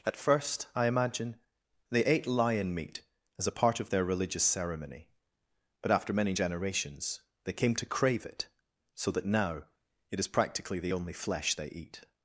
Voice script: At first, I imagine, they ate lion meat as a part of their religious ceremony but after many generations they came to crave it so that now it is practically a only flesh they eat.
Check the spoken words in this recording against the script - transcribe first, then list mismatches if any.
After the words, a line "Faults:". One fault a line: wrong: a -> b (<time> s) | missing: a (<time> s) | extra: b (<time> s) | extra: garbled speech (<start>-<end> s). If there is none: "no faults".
At first, I imagine, they ate lion meat as a part of their religious ceremony but after many generations they came to crave it so that now it is practically the only flesh they eat.
Faults:
wrong: a -> the (10.8 s)